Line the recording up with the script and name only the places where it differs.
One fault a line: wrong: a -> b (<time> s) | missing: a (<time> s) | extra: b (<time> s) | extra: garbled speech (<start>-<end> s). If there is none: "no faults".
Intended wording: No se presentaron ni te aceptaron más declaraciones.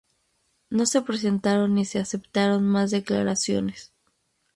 wrong: te -> se (1.9 s)